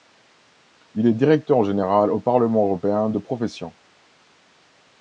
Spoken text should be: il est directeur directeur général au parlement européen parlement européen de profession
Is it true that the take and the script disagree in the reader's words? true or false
true